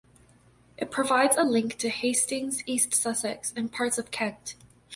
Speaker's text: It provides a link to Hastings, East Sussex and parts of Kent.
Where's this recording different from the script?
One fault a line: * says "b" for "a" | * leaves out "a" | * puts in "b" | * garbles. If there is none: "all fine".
all fine